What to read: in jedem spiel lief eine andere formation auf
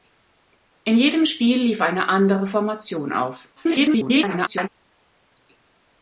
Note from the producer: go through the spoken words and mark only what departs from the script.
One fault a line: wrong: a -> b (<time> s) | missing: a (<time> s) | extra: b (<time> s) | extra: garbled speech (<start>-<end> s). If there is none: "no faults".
extra: garbled speech (3.6-4.7 s)